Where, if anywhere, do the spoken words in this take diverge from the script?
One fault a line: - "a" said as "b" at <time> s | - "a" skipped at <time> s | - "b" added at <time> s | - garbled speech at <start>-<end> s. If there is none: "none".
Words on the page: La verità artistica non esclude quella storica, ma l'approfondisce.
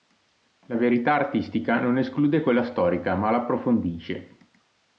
none